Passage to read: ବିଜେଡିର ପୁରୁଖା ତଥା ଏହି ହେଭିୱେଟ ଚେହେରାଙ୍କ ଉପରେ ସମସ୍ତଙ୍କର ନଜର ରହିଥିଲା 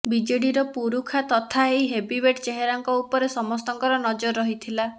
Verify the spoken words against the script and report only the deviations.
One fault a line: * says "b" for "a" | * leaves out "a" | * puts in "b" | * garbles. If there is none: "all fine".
all fine